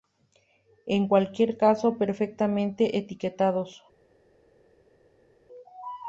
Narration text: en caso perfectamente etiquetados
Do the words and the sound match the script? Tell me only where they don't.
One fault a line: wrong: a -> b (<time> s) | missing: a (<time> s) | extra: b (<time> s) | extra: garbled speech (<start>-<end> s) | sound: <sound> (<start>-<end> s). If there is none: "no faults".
extra: cualquier (1.1 s)